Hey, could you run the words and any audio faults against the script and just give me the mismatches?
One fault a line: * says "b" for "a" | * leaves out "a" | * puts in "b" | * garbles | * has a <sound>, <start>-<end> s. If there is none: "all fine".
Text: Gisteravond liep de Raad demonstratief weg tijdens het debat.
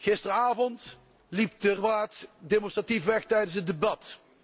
all fine